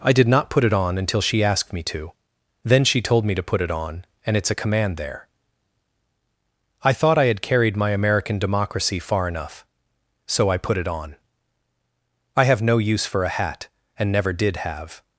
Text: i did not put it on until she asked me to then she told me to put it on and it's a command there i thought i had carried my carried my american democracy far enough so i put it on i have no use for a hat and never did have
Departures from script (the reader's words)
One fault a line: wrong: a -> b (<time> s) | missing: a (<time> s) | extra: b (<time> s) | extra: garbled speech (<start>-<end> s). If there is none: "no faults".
missing: carried my (7.9 s)